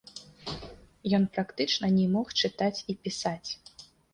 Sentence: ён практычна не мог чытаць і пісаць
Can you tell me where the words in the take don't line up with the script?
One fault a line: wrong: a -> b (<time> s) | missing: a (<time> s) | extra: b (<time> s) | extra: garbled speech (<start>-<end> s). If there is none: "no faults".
no faults